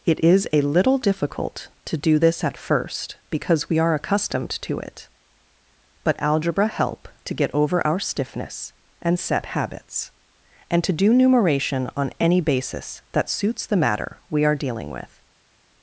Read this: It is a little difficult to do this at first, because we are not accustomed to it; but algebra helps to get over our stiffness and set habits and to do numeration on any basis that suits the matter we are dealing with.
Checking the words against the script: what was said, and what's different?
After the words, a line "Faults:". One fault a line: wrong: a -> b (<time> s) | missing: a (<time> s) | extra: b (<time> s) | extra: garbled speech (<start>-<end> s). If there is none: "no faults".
It is a little difficult to do this at first, because we are accustomed to it; but algebra help to get over our stiffness and set habits and to do numeration on any basis that suits the matter we are dealing with.
Faults:
missing: not (3.9 s)
wrong: helps -> help (6.7 s)